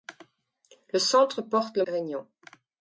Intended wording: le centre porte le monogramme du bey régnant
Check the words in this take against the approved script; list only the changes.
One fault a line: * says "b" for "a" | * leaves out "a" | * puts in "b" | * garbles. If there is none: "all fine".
* leaves out "monogramme du bey"